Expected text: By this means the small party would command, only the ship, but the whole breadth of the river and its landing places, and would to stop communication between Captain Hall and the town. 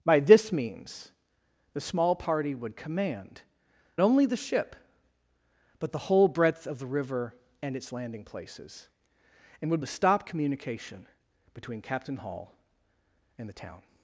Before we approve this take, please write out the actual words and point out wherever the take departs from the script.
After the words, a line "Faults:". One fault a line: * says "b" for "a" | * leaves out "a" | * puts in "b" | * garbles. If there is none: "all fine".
By this means the small party would command, only the ship, but the whole breadth of the river and its landing places, and would to stop communication between Captain Hall and the town.
Faults:
all fine